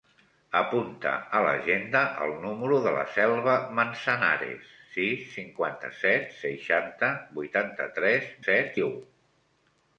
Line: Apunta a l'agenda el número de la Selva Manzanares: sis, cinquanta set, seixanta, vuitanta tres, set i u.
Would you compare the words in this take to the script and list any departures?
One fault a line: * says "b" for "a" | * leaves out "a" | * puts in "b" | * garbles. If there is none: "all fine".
all fine